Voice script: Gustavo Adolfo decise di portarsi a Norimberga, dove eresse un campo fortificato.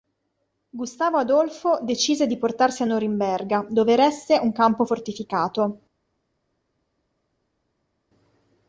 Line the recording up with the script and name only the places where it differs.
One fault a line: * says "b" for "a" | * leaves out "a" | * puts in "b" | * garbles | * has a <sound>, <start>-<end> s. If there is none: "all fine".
all fine